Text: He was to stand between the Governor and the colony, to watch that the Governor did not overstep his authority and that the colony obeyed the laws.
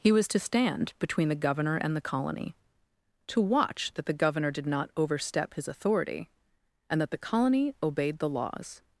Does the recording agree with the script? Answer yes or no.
yes